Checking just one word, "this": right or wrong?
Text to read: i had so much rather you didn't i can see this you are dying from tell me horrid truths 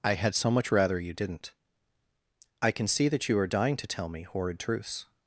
wrong